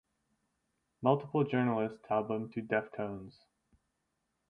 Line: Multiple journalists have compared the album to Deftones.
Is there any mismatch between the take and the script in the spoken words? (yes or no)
yes